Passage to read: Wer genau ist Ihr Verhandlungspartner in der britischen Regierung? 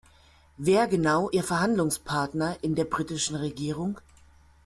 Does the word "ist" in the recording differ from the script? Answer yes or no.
yes